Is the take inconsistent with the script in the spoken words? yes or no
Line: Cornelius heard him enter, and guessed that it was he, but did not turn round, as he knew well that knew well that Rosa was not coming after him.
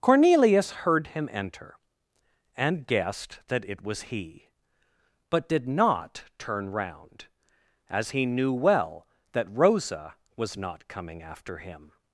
yes